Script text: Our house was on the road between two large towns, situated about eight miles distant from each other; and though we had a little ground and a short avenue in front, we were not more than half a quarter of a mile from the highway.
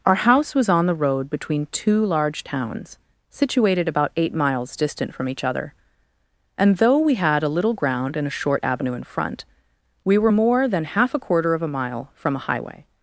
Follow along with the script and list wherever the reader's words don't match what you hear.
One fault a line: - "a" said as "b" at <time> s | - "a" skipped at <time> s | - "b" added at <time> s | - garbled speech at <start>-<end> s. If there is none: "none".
- "not" skipped at 10.3 s
- "the" said as "a" at 12.4 s